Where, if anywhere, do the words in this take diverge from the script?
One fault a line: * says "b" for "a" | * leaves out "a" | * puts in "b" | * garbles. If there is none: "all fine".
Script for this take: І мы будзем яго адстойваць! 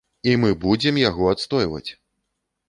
all fine